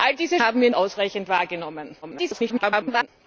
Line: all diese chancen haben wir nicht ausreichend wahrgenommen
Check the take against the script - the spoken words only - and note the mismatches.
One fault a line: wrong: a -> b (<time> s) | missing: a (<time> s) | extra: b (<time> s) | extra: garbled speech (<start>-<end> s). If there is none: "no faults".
missing: chancen (0.4 s)
missing: nicht (0.7 s)
extra: garbled speech (2.0-3.1 s)